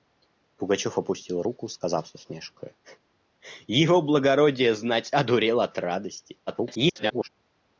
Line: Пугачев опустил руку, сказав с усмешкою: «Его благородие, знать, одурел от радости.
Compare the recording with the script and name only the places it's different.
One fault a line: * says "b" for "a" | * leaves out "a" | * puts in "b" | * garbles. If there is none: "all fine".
* garbles